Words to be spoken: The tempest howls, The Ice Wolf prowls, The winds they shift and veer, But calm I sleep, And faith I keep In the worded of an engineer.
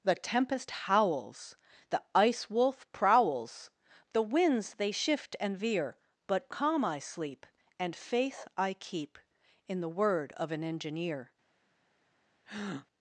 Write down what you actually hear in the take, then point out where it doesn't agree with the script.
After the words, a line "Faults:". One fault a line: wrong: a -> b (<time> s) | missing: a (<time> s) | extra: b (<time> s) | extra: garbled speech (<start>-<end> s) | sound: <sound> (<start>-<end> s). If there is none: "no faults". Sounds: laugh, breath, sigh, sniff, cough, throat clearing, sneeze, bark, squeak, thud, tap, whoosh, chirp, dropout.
The tempest howls, The Ice Wolf prowls, The winds they shift and veer, But calm I sleep, And faith I keep In the word of an engineer.
Faults:
wrong: worded -> word (9.9 s)
sound: breath (12.4-12.9 s)